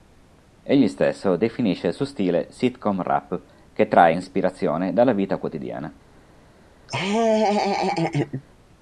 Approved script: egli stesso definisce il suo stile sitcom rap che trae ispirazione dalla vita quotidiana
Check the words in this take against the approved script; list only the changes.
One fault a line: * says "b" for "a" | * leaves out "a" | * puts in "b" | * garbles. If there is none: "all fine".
all fine